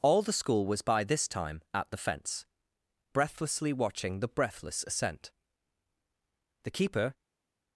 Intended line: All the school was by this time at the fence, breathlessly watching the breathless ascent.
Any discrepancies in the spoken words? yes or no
yes